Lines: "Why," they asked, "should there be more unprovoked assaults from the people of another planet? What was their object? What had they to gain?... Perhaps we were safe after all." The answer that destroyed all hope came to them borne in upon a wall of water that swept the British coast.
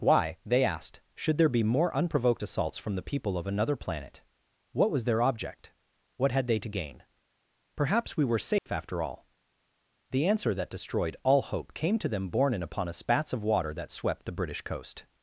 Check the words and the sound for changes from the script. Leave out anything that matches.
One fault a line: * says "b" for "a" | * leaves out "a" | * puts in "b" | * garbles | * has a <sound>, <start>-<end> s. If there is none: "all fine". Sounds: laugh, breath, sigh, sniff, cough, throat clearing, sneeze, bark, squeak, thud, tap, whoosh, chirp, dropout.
* has a dropout, 8.6-8.7 s
* says "spats" for "wall"